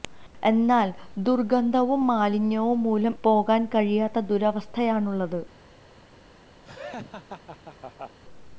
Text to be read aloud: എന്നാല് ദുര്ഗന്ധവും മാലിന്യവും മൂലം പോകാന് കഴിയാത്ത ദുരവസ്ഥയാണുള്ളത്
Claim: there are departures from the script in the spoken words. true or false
false